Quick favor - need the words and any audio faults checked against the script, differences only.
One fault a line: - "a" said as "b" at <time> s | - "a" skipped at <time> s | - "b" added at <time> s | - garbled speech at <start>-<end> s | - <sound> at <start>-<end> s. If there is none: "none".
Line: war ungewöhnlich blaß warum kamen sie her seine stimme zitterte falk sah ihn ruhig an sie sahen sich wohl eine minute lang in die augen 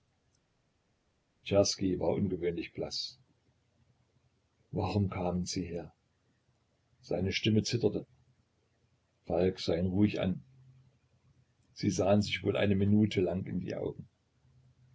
none